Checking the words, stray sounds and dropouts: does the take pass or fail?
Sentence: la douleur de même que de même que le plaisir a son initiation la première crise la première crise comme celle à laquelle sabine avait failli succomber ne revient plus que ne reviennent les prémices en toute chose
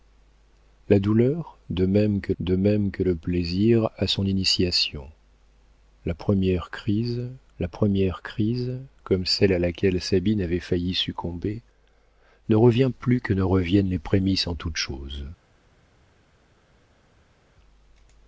pass